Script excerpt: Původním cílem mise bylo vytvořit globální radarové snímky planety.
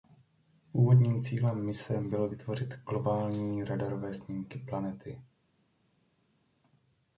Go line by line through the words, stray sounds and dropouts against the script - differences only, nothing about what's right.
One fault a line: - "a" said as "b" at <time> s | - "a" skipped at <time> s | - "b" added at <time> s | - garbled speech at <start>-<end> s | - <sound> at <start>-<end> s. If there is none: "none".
none